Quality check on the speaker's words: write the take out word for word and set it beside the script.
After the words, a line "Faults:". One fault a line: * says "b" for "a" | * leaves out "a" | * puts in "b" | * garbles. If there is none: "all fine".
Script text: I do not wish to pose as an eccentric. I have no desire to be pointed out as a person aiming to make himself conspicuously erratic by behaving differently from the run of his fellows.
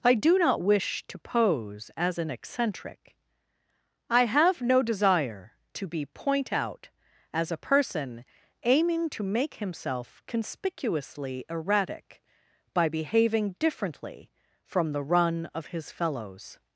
I do not wish to pose as an eccentric. I have no desire to be point out as a person aiming to make himself conspicuously erratic by behaving differently from the run of his fellows.
Faults:
* says "point" for "pointed"